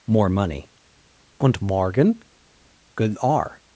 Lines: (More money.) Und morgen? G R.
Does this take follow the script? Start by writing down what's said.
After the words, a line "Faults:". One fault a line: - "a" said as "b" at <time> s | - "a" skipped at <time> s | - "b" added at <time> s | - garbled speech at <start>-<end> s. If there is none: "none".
(More money.) Und morgen? Good R.
Faults:
- "G" said as "Good" at 3.0 s